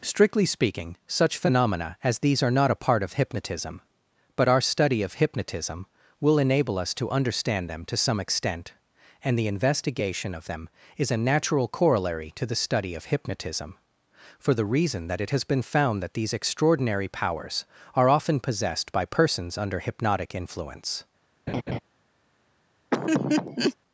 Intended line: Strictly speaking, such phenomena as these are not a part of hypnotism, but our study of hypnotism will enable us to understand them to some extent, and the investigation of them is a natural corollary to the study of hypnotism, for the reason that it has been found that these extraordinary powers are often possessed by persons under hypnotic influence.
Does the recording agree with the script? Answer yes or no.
yes